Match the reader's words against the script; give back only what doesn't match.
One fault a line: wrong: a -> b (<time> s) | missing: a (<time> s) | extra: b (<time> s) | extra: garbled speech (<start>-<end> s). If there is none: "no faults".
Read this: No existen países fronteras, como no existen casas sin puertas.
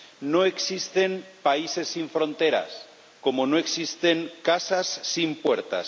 extra: sin (1.9 s)